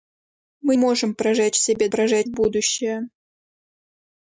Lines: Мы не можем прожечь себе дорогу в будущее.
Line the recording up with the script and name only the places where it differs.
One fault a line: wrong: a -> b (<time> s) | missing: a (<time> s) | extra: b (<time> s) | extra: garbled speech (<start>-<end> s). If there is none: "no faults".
missing: не (0.8 s)
wrong: дорогу -> прожечь (1.9 s)